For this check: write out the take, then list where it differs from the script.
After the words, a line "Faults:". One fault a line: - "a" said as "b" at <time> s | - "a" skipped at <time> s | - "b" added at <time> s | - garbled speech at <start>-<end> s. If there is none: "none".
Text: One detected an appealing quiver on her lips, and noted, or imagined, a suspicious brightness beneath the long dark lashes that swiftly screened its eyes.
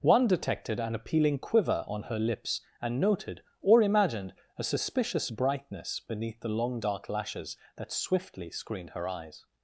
One detected an appealing quiver on her lips, and noted, or imagined, a suspicious brightness beneath the long dark lashes that swiftly screened her eyes.
Faults:
- "its" said as "her" at 8.9 s